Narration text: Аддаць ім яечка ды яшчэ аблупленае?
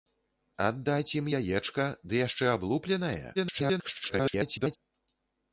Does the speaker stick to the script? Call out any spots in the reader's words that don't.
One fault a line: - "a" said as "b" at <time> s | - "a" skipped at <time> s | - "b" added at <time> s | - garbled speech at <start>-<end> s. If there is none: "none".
- garbled speech at 3.3-4.8 s